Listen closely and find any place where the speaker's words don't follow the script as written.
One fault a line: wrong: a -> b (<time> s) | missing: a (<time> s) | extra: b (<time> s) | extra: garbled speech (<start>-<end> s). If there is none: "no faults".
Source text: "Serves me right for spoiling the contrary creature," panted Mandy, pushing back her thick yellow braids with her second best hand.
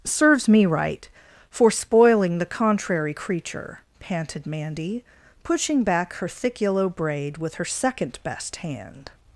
wrong: braids -> braid (6.9 s)